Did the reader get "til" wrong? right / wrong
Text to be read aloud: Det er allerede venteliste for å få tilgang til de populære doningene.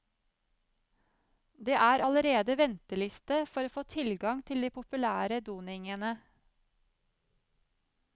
right